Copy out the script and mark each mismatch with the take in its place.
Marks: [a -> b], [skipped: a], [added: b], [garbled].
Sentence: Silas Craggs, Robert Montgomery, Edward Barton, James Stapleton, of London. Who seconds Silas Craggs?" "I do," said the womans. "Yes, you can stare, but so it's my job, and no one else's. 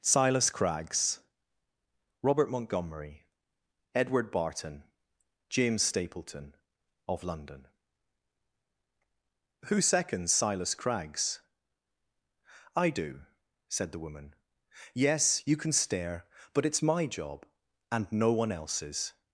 Silas Craggs, Robert Montgomery, Edward Barton, James Stapleton, of London. Who seconds Silas Craggs?" "I do," said the [womans. -> woman] "Yes, you can stare, but [skipped: so] it's my job, and no one else's.